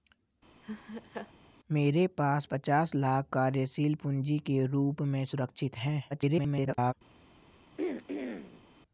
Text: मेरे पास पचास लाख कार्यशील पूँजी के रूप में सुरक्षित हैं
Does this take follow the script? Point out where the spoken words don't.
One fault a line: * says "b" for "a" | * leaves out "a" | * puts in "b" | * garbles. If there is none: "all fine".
* garbles